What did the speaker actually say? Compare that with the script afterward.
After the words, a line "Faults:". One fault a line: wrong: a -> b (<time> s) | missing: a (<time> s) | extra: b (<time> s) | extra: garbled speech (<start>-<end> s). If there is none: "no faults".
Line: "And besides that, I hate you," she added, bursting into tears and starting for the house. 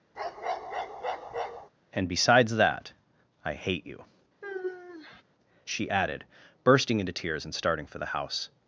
"And besides that, I hate you," she added, bursting into tears and starting for the house.
Faults:
no faults